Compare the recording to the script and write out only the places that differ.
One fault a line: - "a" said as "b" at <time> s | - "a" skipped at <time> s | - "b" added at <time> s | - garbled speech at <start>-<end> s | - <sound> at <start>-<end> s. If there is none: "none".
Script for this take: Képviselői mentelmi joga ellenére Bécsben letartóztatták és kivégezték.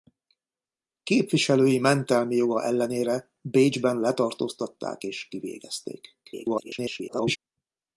- garbled speech at 6.2-7.4 s